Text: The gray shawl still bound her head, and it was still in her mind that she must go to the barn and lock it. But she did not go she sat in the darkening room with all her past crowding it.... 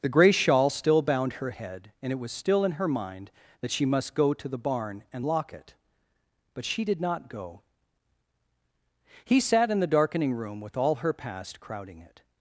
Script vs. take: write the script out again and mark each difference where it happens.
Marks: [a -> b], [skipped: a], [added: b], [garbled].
The gray shawl still bound her head, and it was still in her mind that she must go to the barn and lock it. But she did not go [she -> he] sat in the darkening room with all her past crowding it....